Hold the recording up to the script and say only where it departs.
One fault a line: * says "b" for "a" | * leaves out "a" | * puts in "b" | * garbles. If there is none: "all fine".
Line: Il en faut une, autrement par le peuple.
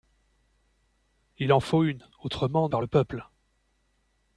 all fine